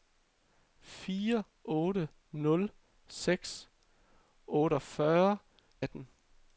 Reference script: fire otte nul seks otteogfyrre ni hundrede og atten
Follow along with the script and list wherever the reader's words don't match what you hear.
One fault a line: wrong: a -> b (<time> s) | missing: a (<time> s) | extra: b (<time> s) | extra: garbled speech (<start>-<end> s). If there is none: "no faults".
missing: ni hundrede og (5.4 s)